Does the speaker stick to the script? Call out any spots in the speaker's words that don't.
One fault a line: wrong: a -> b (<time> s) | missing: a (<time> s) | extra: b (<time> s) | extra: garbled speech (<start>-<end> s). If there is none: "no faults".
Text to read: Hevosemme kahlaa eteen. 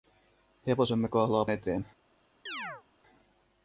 no faults